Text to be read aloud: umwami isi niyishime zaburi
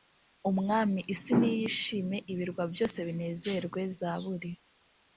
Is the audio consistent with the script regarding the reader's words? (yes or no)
no